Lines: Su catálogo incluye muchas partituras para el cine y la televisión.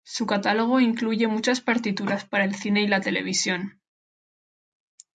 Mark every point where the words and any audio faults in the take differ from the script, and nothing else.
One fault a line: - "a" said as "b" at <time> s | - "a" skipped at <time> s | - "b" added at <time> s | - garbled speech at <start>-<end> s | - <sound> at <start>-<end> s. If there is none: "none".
none